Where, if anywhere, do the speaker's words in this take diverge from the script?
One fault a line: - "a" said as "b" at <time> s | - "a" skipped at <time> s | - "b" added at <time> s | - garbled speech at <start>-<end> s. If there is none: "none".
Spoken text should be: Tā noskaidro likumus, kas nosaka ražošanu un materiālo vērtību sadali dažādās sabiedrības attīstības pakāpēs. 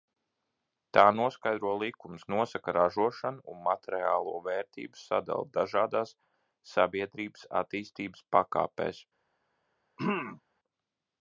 - "kas" skipped at 2.2 s